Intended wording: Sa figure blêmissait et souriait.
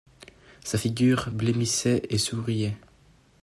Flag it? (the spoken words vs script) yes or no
no